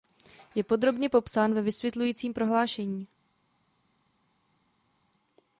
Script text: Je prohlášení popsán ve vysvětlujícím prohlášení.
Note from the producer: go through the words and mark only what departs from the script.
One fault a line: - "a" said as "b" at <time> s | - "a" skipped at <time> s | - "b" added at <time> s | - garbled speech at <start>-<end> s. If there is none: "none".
- "prohlášení" said as "podrobně" at 0.6 s